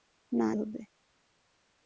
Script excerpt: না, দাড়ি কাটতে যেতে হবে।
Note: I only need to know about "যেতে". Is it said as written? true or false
false